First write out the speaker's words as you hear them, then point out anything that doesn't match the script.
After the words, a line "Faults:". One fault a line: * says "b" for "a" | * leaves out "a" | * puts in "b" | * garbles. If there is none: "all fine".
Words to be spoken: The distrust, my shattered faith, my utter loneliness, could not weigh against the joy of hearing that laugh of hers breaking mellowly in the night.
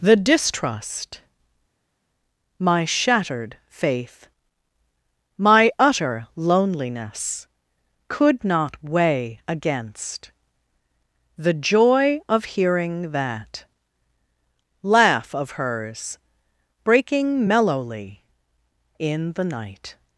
The distrust, my shattered faith, my utter loneliness, could not weigh against the joy of hearing that laugh of hers breaking mellowly in the night.
Faults:
all fine